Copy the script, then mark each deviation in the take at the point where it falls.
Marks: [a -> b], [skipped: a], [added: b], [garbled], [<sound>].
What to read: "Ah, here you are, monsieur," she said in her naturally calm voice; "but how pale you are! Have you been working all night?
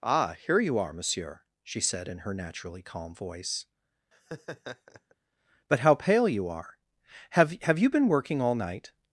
"Ah, here you are, monsieur," she said in her naturally calm voice; [laugh] "but how pale you are! Have [added: Have] you been working all night?